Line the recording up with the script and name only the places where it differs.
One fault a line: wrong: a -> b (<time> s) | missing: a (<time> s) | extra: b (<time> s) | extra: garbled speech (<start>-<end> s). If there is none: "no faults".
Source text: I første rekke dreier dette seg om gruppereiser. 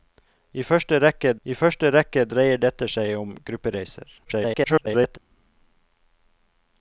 extra: I første rekke (1.4 s)
extra: garbled speech (4.2-5.2 s)